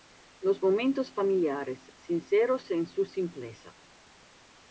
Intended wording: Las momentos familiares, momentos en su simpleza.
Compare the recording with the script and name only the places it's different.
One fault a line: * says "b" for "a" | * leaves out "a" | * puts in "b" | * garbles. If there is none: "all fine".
* says "Los" for "Las"
* says "sinceros" for "momentos"